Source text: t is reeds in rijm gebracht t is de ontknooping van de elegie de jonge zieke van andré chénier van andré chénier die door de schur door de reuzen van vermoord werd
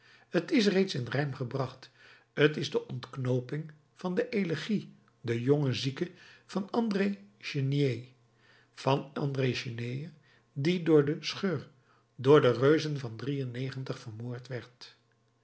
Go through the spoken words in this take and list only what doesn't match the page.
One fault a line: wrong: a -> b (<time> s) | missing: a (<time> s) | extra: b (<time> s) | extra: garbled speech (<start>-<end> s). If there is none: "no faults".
no faults